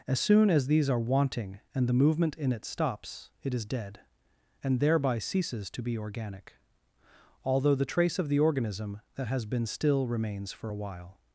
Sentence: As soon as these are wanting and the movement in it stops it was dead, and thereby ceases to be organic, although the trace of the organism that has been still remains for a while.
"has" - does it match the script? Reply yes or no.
yes